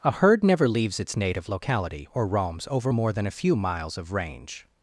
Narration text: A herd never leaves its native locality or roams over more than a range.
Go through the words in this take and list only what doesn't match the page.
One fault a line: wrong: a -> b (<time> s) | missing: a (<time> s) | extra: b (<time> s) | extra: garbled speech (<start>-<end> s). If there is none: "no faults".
extra: few miles of (3.3 s)